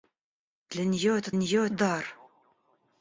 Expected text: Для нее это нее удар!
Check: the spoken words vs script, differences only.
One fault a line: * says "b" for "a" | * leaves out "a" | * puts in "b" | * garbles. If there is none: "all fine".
all fine